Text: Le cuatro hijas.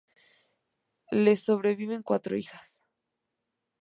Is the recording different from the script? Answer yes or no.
yes